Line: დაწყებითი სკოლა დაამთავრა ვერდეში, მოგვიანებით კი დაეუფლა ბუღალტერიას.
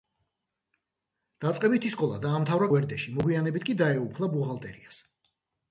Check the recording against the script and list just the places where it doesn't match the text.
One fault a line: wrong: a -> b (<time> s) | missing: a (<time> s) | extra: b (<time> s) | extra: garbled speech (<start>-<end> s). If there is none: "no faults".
no faults